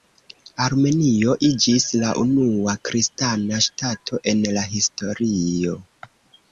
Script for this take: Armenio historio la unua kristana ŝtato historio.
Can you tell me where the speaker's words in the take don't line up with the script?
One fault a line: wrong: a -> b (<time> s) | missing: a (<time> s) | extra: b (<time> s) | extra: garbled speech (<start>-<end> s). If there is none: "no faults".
wrong: historio -> iĝis (1.5 s)
extra: en la (4.3 s)